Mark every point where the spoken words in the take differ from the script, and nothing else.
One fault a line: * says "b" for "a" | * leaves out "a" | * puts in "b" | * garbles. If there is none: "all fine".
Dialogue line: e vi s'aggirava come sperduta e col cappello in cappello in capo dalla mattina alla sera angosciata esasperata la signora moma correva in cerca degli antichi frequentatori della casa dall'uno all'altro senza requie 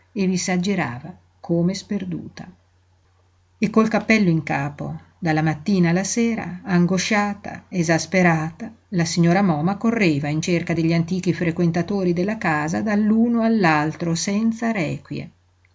* leaves out "cappello in"